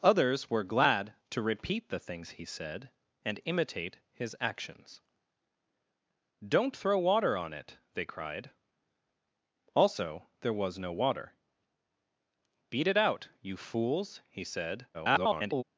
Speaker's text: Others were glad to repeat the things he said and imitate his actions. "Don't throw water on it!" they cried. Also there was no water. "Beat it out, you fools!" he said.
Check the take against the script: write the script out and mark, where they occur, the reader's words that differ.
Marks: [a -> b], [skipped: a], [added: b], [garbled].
Others were glad to repeat the things he said and imitate his actions. "Don't throw water on it!" they cried. Also there was no water. "Beat it out, you fools!" he said. [garbled]